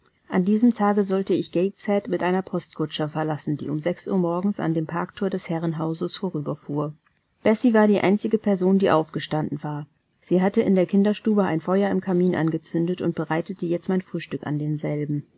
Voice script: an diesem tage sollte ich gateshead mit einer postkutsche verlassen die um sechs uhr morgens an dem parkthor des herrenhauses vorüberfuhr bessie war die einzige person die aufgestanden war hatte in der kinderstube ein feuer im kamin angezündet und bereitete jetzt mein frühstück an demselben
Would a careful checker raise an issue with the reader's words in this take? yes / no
yes